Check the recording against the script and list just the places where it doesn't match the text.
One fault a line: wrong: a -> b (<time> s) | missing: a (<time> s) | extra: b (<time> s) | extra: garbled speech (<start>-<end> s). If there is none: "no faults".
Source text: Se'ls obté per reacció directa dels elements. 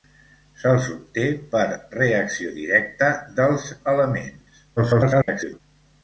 extra: garbled speech (4.8-5.6 s)